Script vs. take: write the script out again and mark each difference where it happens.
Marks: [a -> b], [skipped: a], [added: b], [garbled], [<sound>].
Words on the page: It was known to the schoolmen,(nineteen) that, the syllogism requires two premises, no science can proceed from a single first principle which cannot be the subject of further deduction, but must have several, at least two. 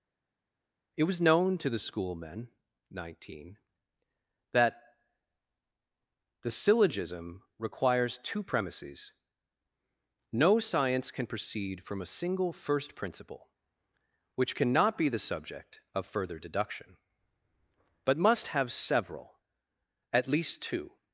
It was known to the schoolmen,(nineteen) that, the syllogism requires two premises, no science can proceed from a single first principle which cannot be the subject of further deduction, but must have several, at least two.